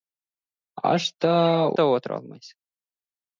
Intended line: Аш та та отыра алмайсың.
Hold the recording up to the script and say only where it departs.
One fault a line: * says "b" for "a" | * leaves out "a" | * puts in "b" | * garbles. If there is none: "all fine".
all fine